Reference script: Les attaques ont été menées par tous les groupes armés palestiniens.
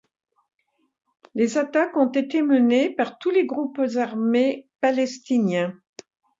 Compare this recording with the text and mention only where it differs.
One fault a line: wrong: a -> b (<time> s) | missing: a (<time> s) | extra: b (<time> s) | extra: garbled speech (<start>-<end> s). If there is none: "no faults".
no faults